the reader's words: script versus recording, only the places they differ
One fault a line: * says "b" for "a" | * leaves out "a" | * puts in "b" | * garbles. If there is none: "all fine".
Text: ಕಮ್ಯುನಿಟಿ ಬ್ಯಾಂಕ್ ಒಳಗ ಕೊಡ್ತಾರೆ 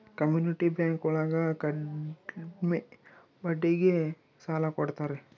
* puts in "ಕಡ್ಮೆ ಬಡ್ಡಿಗೆ ಸಾಲ"